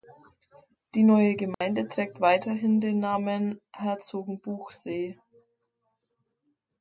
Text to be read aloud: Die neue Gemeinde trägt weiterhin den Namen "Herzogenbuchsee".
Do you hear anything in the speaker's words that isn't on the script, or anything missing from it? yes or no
no